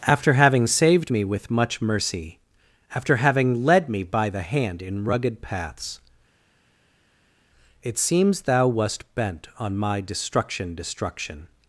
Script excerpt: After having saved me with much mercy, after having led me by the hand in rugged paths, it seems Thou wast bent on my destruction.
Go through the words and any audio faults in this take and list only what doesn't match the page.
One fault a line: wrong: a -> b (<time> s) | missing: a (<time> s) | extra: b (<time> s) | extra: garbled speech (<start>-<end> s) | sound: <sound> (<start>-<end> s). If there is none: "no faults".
extra: destruction (10.7 s)